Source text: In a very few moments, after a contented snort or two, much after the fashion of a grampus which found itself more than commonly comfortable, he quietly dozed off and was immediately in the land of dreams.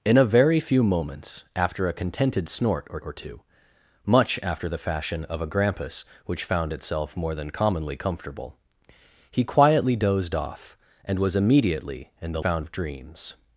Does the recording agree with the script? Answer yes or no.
no